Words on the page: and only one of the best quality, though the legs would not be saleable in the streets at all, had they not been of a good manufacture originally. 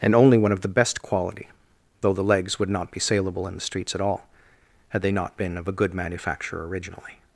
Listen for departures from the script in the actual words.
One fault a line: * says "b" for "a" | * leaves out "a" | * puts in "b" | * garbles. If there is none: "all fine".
all fine